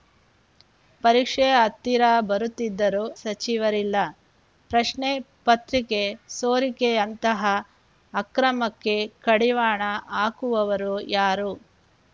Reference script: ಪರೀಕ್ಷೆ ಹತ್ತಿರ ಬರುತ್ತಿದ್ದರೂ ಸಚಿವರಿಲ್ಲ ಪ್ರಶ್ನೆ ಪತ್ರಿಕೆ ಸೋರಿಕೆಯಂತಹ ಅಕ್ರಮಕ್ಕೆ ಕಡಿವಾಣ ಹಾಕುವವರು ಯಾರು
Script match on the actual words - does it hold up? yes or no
yes